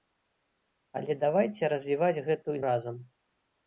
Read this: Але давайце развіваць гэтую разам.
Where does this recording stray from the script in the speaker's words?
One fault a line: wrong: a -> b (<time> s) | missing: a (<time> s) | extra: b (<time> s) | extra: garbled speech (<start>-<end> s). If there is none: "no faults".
no faults